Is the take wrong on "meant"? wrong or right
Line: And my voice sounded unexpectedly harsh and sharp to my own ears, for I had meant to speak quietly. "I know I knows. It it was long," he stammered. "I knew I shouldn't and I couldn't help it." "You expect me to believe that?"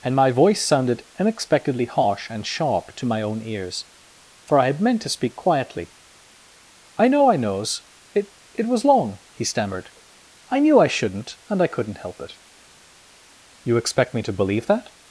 right